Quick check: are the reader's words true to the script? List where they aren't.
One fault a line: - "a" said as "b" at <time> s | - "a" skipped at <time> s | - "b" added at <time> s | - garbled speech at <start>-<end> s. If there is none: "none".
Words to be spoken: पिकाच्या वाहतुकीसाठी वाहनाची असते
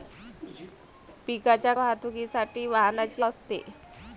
none